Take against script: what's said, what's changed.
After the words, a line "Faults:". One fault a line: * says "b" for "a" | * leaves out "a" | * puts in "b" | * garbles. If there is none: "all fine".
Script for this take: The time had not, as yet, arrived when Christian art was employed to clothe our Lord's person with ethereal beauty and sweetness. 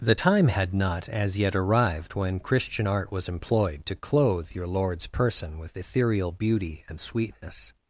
The time had not, as yet, arrived when Christian art was employed to clothe your Lord's person with ethereal beauty and sweetness.
Faults:
* says "your" for "our"